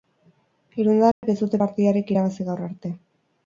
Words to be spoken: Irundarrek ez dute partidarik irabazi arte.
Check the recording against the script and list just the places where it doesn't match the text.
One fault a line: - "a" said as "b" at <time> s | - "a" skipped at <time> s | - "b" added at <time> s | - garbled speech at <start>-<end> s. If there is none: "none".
- "gaur" added at 2.5 s